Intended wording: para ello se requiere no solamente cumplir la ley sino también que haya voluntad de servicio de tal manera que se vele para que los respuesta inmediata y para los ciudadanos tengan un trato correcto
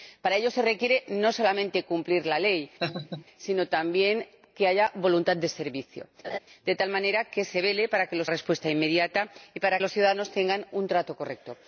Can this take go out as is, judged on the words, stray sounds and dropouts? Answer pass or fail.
fail